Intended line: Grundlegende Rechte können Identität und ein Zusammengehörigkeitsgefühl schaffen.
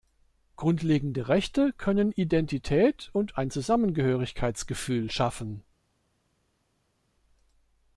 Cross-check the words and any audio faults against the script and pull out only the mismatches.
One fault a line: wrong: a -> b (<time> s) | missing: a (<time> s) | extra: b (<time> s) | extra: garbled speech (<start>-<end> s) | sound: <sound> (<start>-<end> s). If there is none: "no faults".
no faults